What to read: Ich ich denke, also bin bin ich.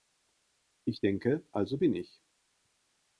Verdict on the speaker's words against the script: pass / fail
fail